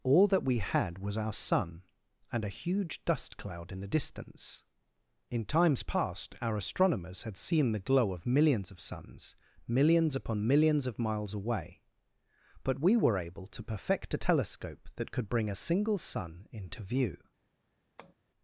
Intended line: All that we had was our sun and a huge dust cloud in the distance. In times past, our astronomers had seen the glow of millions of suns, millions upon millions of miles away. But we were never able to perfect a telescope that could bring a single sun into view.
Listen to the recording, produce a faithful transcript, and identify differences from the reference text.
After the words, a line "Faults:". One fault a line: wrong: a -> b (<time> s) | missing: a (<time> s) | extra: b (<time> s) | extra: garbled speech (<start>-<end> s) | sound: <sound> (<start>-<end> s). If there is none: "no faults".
All that we had was our sun and a huge dust cloud in the distance. In times past, our astronomers had seen the glow of millions of suns, millions upon millions of miles away. But we were able to perfect a telescope that could bring a single sun into view.
Faults:
missing: never (13.2 s)
sound: tap (18.0-18.1 s)